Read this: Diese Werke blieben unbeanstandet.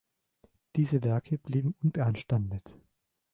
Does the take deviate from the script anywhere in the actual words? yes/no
no